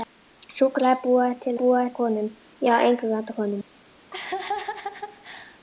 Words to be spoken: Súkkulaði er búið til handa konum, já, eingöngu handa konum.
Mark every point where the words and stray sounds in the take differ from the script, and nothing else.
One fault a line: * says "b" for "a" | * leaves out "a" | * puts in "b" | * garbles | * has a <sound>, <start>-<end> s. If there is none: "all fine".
* says "búið" for "handa"
* has a laugh, 4.1-5.6 s